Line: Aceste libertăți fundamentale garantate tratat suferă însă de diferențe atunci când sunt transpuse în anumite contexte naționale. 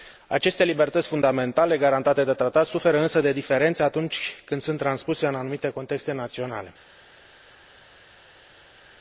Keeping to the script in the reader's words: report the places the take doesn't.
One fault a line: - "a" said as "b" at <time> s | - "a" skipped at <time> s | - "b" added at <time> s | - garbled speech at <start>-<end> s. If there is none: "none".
- "de" added at 2.2 s